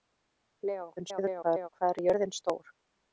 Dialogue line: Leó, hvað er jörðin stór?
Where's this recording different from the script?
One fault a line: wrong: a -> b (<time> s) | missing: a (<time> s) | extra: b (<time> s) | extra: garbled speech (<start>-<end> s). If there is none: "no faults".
extra: garbled speech (1.0-1.7 s)